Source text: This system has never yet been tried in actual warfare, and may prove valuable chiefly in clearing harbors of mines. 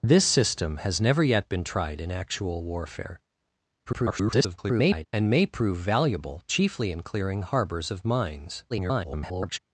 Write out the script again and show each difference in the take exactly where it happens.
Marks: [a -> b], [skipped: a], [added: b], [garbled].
This system has never yet been tried in actual warfare, [garbled] and may prove valuable chiefly in clearing harbors of mines. [garbled]